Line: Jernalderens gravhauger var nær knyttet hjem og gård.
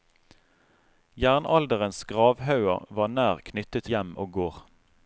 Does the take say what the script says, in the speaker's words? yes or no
yes